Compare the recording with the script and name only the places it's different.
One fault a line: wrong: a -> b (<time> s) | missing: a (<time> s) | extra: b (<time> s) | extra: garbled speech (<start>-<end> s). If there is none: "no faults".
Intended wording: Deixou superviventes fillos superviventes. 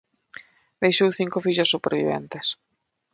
wrong: superviventes -> cinco (1.2 s)